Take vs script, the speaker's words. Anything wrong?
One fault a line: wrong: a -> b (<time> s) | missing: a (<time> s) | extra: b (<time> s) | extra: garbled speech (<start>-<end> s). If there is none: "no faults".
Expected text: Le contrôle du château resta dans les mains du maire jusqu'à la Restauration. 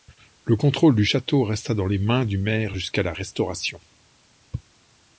no faults